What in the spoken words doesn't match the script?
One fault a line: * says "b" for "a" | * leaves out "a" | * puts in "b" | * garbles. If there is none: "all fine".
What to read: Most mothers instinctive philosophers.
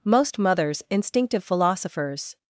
all fine